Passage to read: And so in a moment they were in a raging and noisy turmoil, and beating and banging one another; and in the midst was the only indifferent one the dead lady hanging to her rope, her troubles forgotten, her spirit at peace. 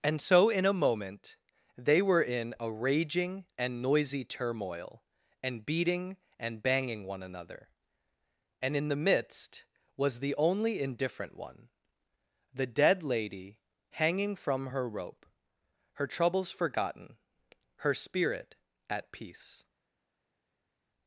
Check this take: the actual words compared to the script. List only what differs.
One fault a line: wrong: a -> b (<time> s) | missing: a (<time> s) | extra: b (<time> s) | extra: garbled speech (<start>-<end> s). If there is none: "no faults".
wrong: to -> from (14.4 s)